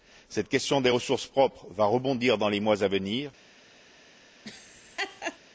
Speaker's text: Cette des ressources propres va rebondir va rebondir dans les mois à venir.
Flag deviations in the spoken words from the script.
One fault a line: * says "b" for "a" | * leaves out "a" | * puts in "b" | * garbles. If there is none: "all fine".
* puts in "question"
* leaves out "va rebondir"